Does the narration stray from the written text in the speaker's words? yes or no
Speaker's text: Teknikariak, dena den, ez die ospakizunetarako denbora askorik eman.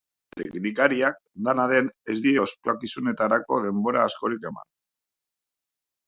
no